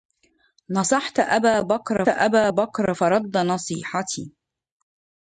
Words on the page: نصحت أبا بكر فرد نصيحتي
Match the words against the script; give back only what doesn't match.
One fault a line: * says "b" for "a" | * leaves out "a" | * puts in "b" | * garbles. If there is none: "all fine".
* puts in "أبا بكر"